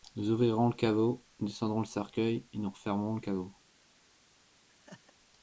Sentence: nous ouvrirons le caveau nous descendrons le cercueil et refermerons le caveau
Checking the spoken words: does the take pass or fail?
fail